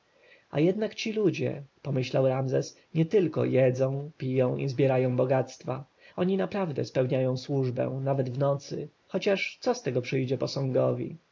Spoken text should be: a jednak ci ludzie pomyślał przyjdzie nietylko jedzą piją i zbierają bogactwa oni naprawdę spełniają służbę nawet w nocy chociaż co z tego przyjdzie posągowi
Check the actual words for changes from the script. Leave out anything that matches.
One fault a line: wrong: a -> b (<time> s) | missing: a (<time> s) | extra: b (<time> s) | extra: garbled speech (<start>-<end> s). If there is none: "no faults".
wrong: przyjdzie -> ramzes (2.3 s)